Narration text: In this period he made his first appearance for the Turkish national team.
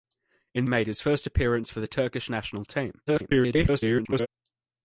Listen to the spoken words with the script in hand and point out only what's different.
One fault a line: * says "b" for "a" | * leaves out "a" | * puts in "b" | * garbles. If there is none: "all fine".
* leaves out "this period he"
* garbles